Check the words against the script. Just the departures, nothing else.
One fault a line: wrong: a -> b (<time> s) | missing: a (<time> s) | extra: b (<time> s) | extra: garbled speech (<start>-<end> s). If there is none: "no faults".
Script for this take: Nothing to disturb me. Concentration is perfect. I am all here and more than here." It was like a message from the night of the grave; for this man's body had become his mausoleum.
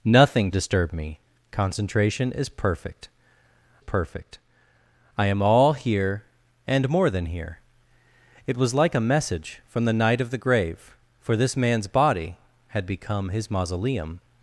missing: to (0.5 s)
extra: perfect (3.8 s)